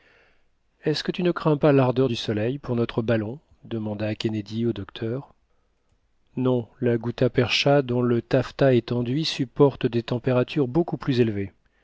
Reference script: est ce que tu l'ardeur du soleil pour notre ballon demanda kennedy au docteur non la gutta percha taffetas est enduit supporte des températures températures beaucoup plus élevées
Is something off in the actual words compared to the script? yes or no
yes